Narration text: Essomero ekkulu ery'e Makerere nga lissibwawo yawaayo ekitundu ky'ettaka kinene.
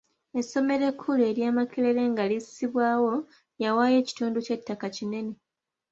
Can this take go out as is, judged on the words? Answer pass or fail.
pass